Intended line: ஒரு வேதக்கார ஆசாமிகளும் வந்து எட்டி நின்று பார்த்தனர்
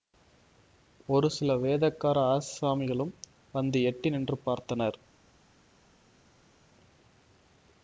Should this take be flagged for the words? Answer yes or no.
yes